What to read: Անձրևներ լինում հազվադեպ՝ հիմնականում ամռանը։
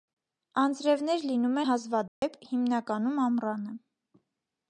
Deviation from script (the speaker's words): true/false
false